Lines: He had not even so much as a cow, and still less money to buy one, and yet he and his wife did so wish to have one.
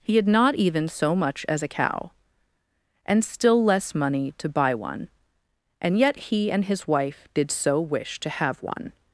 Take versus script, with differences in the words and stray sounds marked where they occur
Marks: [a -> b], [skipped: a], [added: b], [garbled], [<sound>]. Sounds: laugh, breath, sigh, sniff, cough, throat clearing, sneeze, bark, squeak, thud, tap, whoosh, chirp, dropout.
He had not even so much as a cow, and still less money to buy one, and yet he and his wife did so wish to have one.